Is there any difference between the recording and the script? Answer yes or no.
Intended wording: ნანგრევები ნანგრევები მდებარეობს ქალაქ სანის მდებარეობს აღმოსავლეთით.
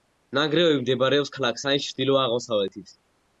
yes